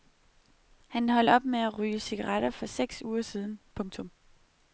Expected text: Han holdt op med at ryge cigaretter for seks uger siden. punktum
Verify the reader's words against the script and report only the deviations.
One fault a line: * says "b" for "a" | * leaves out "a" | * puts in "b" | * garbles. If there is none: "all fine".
all fine